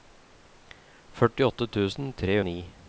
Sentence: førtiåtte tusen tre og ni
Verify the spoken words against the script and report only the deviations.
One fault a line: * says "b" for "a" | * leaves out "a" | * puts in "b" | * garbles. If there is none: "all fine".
all fine